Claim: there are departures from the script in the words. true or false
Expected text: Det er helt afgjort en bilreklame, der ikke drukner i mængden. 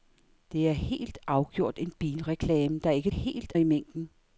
true